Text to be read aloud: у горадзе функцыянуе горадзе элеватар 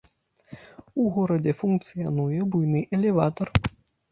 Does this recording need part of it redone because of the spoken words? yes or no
yes